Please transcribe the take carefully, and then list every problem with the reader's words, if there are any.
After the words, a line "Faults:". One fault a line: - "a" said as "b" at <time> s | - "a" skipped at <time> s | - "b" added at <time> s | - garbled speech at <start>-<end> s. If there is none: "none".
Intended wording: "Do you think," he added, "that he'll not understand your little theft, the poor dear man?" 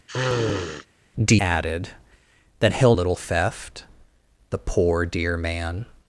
"Do added, "that he'll little theft, the poor dear man?"
Faults:
- "you think he" skipped at 1.4 s
- "not understand your" skipped at 2.9 s